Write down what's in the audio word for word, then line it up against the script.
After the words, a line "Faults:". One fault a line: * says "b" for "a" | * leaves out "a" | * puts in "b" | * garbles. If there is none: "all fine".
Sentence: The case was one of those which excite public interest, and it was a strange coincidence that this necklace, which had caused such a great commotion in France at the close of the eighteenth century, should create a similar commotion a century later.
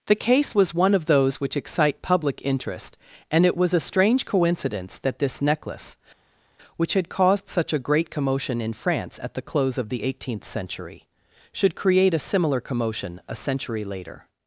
The case was one of those which excite public interest, and it was a strange coincidence that this necklace, which had caused such a great commotion in France at the close of the eighteenth century, should create a similar commotion a century later.
Faults:
all fine